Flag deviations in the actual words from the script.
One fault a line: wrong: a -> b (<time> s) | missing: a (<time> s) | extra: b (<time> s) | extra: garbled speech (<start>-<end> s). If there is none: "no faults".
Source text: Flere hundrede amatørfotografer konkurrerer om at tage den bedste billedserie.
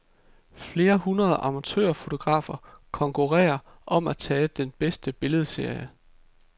no faults